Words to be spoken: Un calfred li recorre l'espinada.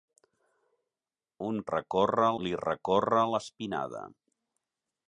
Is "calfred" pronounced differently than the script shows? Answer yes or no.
yes